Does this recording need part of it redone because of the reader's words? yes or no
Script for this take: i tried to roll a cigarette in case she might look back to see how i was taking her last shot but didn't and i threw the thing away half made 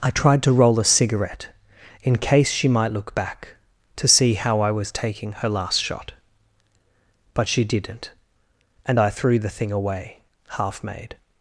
yes